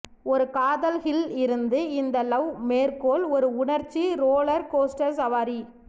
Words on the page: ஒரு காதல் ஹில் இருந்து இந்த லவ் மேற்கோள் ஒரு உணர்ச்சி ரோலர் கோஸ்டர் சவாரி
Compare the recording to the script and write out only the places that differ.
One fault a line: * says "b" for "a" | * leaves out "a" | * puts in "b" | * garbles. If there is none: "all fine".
all fine